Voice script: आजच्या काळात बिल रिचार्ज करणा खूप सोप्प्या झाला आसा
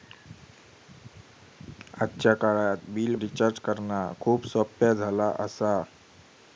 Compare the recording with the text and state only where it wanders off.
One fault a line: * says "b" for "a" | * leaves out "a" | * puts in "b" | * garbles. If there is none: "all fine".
all fine